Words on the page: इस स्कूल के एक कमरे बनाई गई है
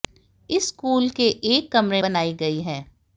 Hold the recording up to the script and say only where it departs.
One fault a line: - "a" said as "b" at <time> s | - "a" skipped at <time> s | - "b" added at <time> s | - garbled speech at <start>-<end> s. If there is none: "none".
none